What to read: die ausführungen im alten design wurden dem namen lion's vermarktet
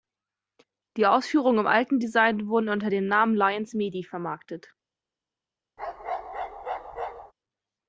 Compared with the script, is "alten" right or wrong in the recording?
right